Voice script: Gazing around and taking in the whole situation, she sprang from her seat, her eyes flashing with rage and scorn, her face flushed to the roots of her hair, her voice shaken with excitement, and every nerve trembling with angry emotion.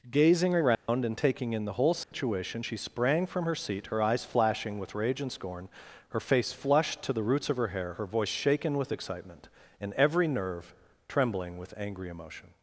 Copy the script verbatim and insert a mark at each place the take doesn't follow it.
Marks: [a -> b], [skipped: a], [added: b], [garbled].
Gazing around and taking in the whole situation, she sprang from her seat, her eyes flashing with rage and scorn, her face flushed to the roots of her hair, her voice shaken with excitement, and every nerve trembling with angry emotion.